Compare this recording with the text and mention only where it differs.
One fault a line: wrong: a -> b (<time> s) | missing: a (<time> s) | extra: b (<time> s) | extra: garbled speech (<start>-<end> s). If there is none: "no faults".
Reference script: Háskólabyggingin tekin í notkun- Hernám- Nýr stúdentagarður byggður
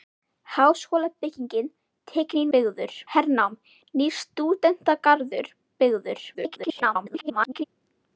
wrong: notkun -> byggður (2.6 s)
extra: garbled speech (6.3-7.6 s)